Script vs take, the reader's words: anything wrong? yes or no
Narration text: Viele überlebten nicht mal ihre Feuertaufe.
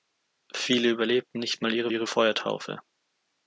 yes